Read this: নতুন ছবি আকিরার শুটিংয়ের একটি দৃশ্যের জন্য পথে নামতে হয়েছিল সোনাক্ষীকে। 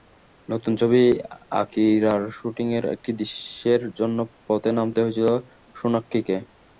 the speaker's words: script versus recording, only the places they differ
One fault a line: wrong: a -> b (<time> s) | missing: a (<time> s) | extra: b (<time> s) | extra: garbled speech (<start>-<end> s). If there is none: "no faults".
no faults